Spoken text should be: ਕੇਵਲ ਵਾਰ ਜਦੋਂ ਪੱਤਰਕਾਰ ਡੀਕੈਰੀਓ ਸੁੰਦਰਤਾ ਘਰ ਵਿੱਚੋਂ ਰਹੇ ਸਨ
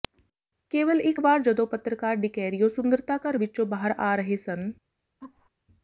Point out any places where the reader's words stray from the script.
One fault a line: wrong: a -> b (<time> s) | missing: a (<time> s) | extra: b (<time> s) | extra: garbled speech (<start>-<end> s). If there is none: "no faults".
extra: ਇਕ (1.0 s)
extra: ਬਾਹਰ ਆ (3.7 s)